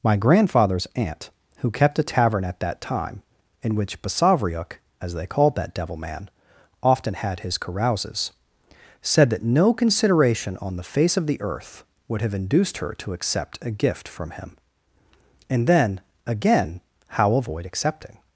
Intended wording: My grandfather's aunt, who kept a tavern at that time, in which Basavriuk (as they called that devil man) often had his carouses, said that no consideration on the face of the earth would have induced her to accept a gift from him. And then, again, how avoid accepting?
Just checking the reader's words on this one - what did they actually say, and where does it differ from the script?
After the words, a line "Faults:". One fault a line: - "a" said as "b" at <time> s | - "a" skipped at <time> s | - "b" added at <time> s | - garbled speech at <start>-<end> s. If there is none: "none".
My grandfather's aunt, who kept a tavern at that time, in which Basavriuk (as they called that devil man) often had his carouses, said that no consideration on the face of the earth would have induced her to accept a gift from him. And then, again, how avoid accepting?
Faults:
none